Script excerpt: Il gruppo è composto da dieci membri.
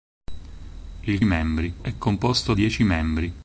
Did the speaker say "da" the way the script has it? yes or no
no